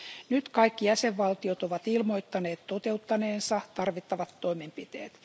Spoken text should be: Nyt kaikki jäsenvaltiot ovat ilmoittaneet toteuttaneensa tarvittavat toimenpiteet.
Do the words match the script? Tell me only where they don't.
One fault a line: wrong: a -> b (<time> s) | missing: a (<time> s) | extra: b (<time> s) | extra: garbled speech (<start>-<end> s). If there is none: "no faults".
no faults